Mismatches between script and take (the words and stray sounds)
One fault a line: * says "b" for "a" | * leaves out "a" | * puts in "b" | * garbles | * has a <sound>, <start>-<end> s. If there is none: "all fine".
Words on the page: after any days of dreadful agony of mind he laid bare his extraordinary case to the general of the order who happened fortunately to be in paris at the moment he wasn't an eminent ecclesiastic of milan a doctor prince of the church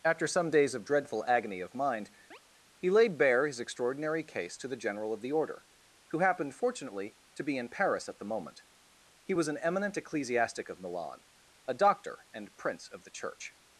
* says "some" for "any"
* has a chirp, 2.3-2.4 s
* says "was" for "wasn't"
* puts in "and"